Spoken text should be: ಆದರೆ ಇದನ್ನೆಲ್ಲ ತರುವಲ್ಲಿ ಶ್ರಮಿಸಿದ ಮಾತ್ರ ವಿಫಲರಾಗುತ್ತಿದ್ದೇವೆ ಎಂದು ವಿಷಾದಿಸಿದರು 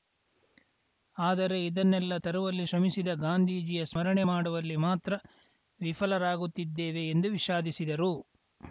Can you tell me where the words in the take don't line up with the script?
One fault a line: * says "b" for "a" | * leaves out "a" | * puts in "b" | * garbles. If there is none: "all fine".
* puts in "ಗಾಂಧೀಜಿಯ ಸ್ಮರಣೆ ಮಾಡುವಲ್ಲಿ"